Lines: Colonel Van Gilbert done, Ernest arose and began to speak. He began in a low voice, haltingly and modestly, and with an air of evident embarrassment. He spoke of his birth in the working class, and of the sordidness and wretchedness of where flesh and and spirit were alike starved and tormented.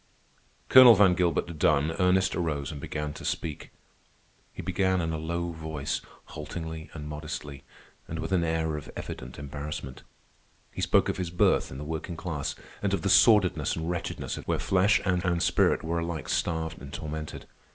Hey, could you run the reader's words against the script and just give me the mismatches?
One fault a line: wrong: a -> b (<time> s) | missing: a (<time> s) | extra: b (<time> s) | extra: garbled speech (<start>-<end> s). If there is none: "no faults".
no faults